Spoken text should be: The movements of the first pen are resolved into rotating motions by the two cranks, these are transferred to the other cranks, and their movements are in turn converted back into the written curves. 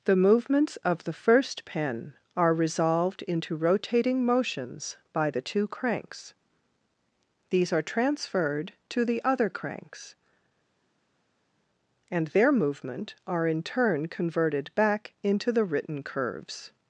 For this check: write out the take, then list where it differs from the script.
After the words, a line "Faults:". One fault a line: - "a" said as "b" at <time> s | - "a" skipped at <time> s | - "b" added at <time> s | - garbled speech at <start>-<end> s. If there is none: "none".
The movements of the first pen are resolved into rotating motions by the two cranks, these are transferred to the other cranks, and their movement are in turn converted back into the written curves.
Faults:
- "movements" said as "movement" at 12.5 s